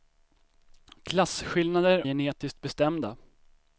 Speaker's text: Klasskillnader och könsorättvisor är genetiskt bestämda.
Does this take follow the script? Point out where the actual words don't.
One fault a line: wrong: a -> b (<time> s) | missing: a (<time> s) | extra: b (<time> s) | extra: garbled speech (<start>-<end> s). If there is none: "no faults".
missing: och könsorättvisor är (2.1 s)